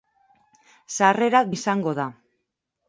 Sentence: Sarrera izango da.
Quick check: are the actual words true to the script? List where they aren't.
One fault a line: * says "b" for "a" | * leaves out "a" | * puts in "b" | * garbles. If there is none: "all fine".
all fine